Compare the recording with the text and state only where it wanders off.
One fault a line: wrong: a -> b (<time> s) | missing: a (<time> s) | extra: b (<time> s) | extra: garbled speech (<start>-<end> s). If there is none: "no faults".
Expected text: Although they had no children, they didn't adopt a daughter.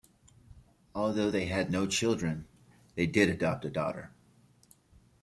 wrong: didn't -> did (3.1 s)